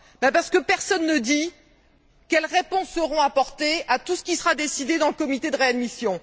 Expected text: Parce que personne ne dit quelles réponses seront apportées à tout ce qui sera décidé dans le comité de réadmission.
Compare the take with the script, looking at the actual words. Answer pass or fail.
pass